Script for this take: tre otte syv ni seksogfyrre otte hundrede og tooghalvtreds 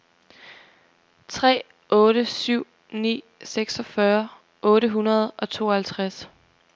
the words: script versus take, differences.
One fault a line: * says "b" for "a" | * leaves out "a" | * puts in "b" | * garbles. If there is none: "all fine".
all fine